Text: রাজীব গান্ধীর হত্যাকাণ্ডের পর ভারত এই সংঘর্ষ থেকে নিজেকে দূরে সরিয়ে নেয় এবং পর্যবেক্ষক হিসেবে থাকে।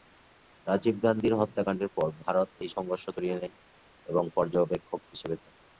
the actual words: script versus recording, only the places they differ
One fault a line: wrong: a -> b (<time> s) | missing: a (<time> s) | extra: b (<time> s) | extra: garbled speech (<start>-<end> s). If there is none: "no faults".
missing: থেকে নিজেকে দূরে (3.0 s)